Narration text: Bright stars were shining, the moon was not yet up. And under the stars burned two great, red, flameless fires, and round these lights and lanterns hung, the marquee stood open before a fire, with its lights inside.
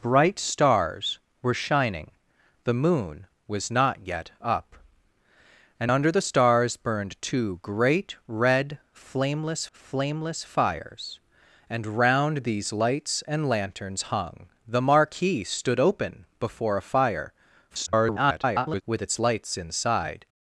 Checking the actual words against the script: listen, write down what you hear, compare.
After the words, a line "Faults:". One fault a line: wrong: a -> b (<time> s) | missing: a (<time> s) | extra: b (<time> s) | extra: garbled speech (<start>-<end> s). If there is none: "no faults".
Bright stars were shining, the moon was not yet up. And under the stars burned two great, red, flameless flameless fires, and round these lights and lanterns hung, the marquee stood open before a fire, [garbled] with its lights inside.
Faults:
extra: flameless (9.7 s)
extra: garbled speech (17.7-18.8 s)